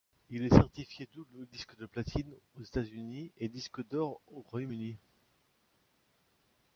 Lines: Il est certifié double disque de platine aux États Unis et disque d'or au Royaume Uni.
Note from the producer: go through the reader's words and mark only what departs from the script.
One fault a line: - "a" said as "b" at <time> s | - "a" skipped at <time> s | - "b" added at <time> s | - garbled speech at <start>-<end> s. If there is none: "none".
none